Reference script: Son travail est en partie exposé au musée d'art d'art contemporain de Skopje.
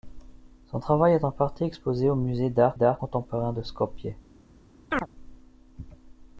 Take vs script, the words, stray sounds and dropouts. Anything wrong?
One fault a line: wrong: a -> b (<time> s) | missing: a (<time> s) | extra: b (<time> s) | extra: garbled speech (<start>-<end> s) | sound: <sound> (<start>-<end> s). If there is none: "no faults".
sound: chirp (4.9-5.1 s)